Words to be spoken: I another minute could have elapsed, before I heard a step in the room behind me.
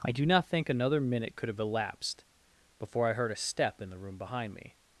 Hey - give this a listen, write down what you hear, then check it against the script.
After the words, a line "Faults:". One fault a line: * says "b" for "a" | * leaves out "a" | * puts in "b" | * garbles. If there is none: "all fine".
I do not think another minute could have elapsed, before I heard a step in the room behind me.
Faults:
* puts in "do not think"